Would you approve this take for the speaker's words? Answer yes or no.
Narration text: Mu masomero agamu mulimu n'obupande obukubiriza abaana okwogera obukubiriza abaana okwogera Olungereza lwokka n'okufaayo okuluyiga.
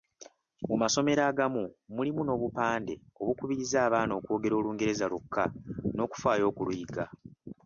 no